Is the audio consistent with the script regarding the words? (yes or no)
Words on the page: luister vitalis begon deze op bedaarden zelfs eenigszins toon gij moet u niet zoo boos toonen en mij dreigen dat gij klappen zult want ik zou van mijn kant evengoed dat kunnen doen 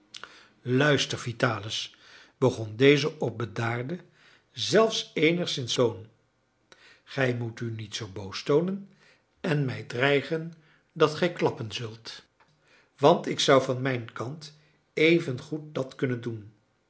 yes